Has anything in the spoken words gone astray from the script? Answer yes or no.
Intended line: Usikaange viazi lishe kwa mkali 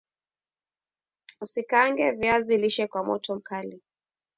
yes